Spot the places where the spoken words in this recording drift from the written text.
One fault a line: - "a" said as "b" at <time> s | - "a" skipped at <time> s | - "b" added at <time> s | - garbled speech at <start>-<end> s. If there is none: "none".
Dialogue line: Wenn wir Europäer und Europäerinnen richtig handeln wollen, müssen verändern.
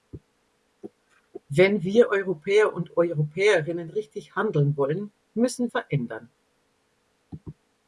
none